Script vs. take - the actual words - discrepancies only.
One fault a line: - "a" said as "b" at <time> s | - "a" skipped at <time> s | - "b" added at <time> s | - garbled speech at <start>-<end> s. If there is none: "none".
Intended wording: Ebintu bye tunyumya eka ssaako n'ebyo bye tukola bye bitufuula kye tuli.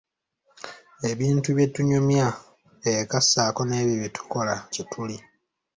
- "bye bitufuula" skipped at 4.5 s